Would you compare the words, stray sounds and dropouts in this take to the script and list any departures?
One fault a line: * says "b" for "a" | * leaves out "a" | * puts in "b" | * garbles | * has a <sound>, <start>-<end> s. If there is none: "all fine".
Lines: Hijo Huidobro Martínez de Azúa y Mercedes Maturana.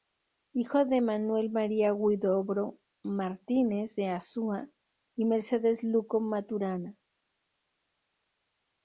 * puts in "de Manuel María"
* puts in "Luco"